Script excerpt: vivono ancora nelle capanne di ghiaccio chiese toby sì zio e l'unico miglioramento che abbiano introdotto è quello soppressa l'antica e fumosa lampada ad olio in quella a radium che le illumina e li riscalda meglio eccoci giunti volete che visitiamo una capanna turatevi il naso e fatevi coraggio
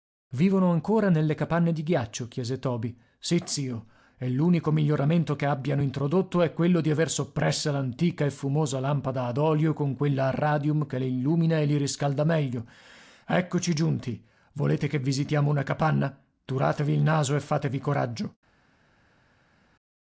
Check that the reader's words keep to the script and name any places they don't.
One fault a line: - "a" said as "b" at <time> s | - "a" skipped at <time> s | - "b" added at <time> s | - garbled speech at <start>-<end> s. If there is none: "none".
- "di aver" added at 6.8 s
- "in" said as "con" at 9.7 s